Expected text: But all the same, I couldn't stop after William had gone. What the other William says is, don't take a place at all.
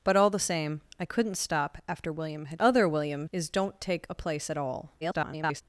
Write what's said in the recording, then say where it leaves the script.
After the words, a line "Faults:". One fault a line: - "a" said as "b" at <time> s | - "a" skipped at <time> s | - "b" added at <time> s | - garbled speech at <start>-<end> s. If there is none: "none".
But all the same, I couldn't stop after William had other William is, don't take a place at all. [garbled]
Faults:
- "gone What the" skipped at 2.6 s
- "says" skipped at 3.3 s
- garbled speech at 5.0-5.6 s